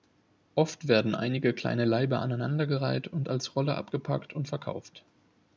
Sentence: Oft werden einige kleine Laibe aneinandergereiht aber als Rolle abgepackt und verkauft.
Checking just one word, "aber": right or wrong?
wrong